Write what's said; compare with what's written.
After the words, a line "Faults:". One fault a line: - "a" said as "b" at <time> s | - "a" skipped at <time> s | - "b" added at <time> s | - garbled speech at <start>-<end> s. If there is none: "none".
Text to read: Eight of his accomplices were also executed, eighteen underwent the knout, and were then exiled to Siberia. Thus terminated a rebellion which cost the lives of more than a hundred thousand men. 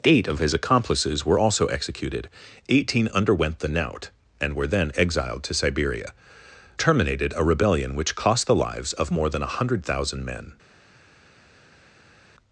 Eight of his accomplices were also executed, eighteen underwent the knout, and were then exiled to Siberia. Terminated a rebellion which cost the lives of more than a hundred thousand men.
Faults:
- "Thus" skipped at 6.1 s